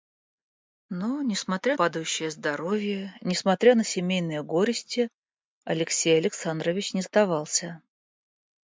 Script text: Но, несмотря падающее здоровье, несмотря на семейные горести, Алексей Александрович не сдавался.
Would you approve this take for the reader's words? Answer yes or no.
yes